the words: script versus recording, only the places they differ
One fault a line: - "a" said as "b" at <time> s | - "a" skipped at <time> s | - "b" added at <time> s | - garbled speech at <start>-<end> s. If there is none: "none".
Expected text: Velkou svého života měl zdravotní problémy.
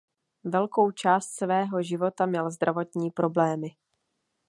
- "část" added at 0.9 s